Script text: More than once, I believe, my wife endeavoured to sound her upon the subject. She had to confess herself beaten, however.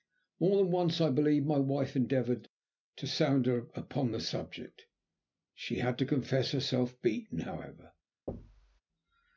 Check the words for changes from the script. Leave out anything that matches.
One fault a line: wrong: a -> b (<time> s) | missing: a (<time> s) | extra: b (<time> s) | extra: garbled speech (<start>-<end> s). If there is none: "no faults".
no faults